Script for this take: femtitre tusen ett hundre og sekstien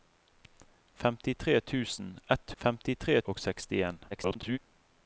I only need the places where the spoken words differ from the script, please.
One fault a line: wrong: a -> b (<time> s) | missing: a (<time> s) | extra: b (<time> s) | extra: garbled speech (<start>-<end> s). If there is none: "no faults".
wrong: hundre -> femtitre (2.6 s)
extra: garbled speech (4.1-4.6 s)